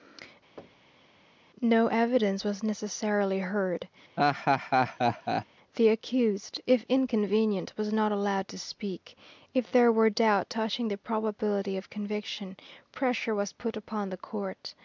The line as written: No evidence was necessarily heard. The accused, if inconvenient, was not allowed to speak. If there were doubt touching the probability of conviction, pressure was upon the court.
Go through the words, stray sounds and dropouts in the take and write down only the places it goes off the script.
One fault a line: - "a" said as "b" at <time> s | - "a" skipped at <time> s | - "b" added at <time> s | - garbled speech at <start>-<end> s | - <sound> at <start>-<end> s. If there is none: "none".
- thud at 0.6-1.1 s
- laugh at 4.2-5.5 s
- "put" added at 13.5 s